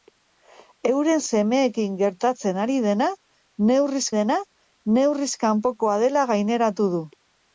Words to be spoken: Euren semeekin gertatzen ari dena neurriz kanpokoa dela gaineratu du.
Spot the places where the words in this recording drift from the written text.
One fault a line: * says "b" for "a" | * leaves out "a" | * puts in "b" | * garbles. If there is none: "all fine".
* puts in "dena neurriz"